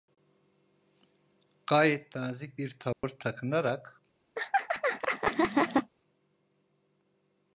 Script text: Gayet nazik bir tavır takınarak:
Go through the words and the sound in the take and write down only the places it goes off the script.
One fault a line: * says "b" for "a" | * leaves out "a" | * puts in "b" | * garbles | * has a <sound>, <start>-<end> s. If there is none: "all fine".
* has a dropout, 2.9-3.0 s
* has a laugh, 4.4-5.9 s